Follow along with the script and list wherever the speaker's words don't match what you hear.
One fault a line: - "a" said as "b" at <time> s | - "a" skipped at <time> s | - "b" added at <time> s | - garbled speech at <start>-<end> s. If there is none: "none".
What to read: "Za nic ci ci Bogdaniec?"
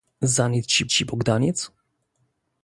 none